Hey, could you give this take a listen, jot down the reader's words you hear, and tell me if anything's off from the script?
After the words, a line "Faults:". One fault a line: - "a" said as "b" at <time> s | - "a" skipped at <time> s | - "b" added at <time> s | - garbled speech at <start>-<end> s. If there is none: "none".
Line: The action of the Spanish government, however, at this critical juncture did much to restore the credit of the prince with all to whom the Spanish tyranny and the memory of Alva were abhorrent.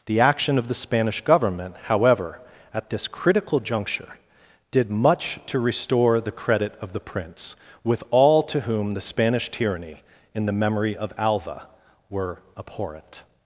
The action of the Spanish government, however, at this critical juncture did much to restore the credit of the prince with all to whom the Spanish tyranny in the memory of Alva were abhorrent.
Faults:
- "and" said as "in" at 10.3 s